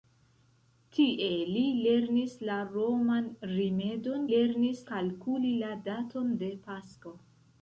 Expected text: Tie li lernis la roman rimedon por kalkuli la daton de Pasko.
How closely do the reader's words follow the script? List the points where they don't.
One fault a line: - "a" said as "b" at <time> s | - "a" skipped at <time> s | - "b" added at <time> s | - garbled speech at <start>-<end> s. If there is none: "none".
- "por" said as "lernis" at 4.3 s